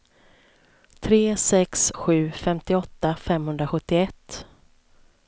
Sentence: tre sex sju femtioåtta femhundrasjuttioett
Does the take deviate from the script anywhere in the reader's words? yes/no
no